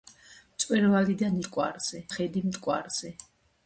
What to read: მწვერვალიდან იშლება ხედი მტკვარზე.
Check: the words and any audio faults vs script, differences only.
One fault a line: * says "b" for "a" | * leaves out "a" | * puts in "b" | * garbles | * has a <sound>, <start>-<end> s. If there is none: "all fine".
* says "მტკვარზე" for "იშლება"